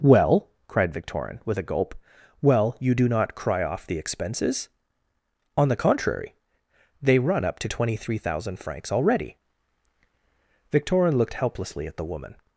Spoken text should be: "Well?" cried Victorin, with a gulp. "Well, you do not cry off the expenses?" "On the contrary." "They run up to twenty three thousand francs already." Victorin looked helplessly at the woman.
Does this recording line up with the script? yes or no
yes